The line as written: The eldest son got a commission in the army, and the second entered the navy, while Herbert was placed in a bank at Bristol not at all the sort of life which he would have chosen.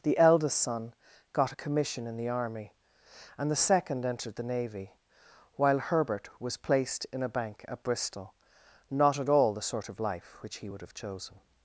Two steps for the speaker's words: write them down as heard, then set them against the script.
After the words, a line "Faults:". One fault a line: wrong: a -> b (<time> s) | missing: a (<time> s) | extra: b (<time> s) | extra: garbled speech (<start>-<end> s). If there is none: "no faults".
The eldest son got a commission in the army, and the second entered the navy, while Herbert was placed in a bank at Bristol not at all the sort of life which he would have chosen.
Faults:
no faults